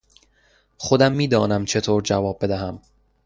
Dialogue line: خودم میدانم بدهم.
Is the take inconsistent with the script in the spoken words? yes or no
yes